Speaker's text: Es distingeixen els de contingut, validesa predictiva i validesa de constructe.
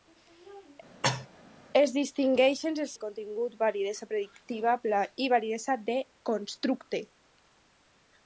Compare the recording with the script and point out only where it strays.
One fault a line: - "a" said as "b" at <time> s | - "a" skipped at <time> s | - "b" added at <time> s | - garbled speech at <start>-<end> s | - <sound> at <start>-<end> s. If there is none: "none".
- cough at 1.0-1.3 s